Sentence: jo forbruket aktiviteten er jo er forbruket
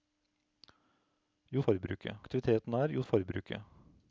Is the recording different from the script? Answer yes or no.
no